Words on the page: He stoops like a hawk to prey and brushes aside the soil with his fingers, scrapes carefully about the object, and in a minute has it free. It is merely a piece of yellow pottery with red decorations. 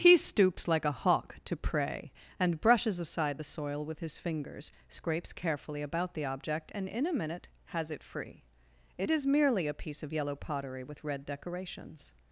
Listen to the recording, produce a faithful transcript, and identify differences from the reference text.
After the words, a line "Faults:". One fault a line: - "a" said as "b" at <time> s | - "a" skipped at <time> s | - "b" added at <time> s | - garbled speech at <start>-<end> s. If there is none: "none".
He stoops like a hawk to prey and brushes aside the soil with his fingers, scrapes carefully about the object, and in a minute has it free. It is merely a piece of yellow pottery with red decorations.
Faults:
none